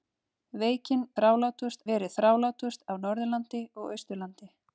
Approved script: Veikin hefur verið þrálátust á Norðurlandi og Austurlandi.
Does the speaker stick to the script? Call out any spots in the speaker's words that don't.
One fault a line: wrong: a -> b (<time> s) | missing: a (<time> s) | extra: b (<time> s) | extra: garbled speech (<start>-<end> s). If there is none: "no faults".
wrong: hefur -> þrálátust (1.2 s)